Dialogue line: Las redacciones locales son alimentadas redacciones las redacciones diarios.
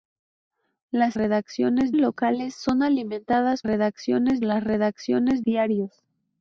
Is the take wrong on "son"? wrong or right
right